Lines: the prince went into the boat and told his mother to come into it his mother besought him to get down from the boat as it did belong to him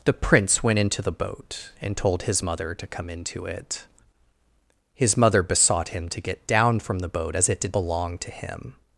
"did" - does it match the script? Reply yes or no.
yes